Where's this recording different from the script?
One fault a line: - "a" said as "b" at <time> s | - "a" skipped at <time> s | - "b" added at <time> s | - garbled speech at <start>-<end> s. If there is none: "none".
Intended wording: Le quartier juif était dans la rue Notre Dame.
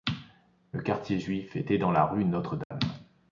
none